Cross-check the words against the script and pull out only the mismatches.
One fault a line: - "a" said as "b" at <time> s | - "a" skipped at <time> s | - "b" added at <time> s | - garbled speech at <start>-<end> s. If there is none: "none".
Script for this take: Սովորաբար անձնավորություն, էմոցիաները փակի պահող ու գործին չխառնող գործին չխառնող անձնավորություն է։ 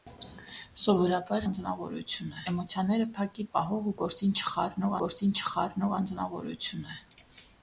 none